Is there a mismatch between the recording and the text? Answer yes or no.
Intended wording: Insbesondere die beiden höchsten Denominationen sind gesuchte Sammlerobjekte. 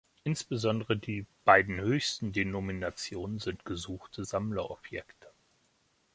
no